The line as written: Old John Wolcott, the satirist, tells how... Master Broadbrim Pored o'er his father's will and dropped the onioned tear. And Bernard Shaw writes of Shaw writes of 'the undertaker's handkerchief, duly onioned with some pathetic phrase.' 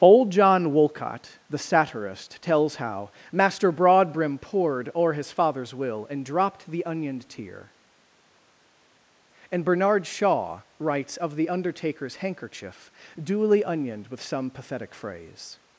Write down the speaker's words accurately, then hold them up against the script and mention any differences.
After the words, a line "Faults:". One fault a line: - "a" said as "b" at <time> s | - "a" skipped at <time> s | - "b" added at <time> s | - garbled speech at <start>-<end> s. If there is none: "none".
Old John Wolcott, the satirist, tells how... Master Broadbrim Pored o'er his father's will and dropped the onioned tear. And Bernard Shaw writes of 'the undertaker's handkerchief, duly onioned with some pathetic phrase.'
Faults:
- "Shaw writes of" skipped at 11.4 s